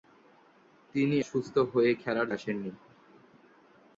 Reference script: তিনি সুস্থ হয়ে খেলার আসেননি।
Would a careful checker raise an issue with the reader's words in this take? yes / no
no